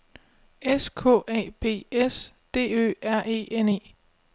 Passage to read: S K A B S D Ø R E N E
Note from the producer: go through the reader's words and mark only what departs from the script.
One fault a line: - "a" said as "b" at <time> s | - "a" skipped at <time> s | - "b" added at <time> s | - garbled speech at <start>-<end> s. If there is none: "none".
none